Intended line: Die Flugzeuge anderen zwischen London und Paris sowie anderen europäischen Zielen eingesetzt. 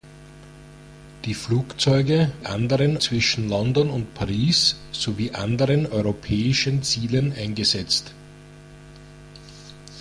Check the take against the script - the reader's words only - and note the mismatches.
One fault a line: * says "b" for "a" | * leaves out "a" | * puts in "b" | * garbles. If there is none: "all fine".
all fine